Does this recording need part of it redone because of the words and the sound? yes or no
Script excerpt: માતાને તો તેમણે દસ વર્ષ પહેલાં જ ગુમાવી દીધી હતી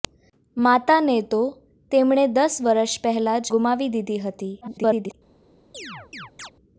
yes